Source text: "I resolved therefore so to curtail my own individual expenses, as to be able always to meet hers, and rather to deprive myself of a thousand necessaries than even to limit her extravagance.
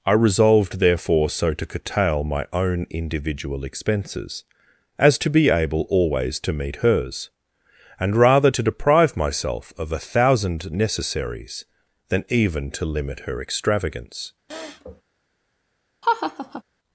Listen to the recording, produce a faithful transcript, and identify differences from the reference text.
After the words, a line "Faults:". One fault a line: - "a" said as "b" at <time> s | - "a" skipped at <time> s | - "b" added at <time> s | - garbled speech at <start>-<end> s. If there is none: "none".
"I resolved therefore so to curtail my own individual expenses, as to be able always to meet hers, and rather to deprive myself of a thousand necessaries than even to limit her extravagance.
Faults:
none